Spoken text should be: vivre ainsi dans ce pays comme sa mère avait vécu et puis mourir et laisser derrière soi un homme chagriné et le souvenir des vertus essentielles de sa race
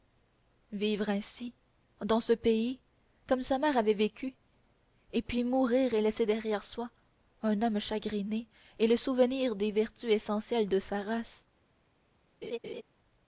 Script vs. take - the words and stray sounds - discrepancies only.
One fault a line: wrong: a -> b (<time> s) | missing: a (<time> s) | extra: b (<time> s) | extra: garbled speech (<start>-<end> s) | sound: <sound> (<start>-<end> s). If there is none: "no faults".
sound: laugh (12.4-12.8 s)